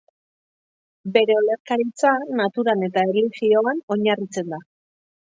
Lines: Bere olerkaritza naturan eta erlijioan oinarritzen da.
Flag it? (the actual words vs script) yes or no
no